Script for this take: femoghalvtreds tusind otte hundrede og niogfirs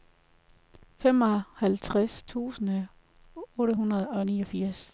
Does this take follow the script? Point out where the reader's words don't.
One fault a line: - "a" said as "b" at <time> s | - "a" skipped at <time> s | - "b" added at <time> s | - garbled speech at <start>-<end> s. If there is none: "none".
none